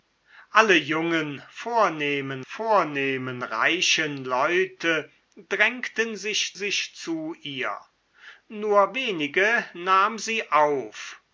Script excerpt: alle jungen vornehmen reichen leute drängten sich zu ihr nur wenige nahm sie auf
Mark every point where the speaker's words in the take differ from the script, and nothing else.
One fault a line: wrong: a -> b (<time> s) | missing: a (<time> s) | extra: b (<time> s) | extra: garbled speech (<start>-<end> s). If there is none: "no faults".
extra: vornehmen (2.4 s)
extra: sich (6.5 s)